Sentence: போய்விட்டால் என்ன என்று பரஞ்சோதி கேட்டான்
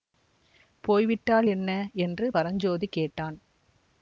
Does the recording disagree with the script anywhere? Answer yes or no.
no